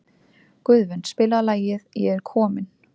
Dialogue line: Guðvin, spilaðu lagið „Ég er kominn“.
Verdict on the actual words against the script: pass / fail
pass